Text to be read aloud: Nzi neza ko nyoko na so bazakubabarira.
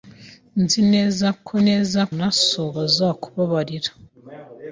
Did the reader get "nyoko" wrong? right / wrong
wrong